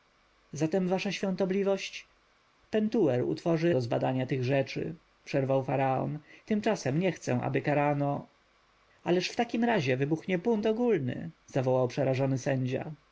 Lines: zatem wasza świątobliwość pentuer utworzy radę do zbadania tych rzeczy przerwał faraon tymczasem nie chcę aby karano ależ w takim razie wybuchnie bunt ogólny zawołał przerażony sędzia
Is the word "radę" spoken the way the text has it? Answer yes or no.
no